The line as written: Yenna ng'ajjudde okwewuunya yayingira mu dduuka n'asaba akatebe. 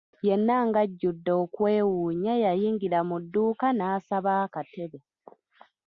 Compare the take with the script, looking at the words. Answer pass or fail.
pass